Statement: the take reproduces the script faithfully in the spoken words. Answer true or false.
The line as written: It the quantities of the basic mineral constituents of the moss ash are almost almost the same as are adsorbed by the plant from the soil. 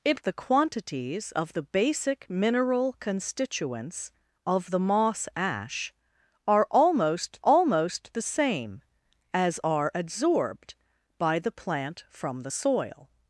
true